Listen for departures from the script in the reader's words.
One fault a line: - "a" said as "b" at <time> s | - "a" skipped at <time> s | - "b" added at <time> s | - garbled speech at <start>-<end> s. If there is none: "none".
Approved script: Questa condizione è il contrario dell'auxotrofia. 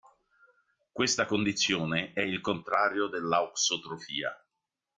none